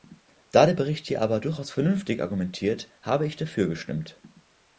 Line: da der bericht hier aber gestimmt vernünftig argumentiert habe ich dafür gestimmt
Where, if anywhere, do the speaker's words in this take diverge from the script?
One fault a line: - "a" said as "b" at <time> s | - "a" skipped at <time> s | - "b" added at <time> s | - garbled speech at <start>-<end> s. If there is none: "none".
- "gestimmt" said as "durchaus" at 1.4 s